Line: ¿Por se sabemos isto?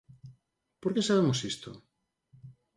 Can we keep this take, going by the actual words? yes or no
no